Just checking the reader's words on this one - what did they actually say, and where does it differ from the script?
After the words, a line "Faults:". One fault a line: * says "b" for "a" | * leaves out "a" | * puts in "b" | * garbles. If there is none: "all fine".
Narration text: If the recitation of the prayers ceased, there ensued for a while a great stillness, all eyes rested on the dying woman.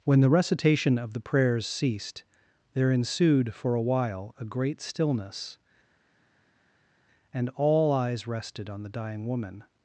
When the recitation of the prayers ceased, there ensued for a while a great stillness, and all eyes rested on the dying woman.
Faults:
* says "When" for "If"
* puts in "and"